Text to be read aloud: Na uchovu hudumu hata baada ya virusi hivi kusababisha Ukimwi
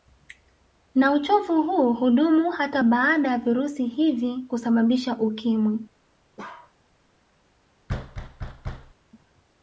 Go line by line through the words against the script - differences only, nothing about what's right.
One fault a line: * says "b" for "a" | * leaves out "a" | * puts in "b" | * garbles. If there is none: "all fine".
* puts in "huu"